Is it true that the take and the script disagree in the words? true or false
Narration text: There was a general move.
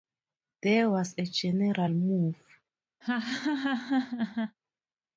false